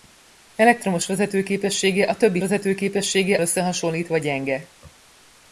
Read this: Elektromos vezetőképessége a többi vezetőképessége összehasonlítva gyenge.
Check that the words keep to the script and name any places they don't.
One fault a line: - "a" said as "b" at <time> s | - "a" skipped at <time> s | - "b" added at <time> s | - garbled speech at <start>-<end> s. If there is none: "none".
none